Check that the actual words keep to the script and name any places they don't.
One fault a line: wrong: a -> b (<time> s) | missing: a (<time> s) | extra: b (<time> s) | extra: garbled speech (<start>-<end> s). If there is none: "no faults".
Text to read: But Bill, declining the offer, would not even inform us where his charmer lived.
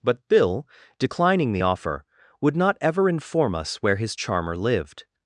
wrong: even -> ever (2.8 s)